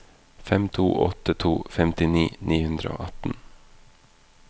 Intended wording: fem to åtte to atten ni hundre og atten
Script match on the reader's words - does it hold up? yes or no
no